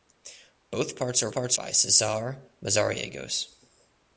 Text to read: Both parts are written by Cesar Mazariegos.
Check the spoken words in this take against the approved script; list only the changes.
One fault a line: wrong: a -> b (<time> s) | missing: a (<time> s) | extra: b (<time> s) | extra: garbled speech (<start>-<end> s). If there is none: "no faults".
wrong: written -> parts (1.3 s)